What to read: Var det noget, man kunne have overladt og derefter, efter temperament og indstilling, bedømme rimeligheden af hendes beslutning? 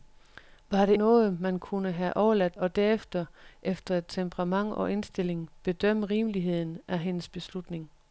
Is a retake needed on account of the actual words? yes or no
no